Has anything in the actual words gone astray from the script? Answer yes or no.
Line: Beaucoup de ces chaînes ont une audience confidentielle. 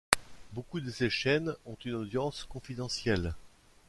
no